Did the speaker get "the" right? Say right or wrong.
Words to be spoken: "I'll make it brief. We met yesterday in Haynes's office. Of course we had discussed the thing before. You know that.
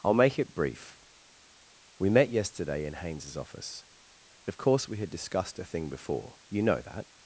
wrong